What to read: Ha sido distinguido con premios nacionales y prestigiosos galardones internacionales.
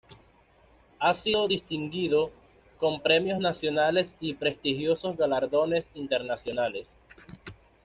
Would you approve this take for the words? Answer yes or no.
yes